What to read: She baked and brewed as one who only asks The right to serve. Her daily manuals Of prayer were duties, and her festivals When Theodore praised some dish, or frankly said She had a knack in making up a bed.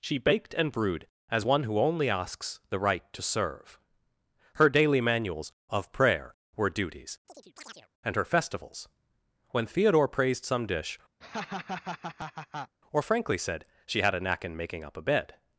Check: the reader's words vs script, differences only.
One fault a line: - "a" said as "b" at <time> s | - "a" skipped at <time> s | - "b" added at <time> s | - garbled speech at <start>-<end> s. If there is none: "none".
none